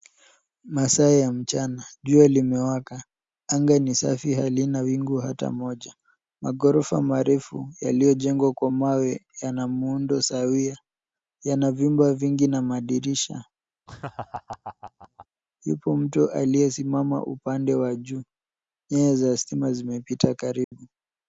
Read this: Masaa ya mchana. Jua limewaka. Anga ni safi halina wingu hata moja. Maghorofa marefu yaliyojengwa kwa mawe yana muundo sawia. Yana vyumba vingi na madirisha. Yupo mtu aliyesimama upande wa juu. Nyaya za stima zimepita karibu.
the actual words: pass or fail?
pass